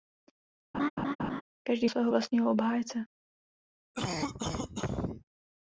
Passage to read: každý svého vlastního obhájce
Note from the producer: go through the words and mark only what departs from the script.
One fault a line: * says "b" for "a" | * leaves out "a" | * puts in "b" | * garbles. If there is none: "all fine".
all fine